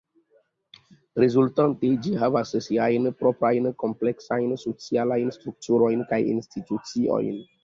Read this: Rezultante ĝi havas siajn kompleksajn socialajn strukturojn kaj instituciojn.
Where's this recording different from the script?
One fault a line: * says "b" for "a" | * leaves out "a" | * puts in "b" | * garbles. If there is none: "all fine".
* puts in "proprajn"